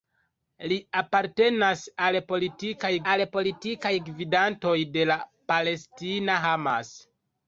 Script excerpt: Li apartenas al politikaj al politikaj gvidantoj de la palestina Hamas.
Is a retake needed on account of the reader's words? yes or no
no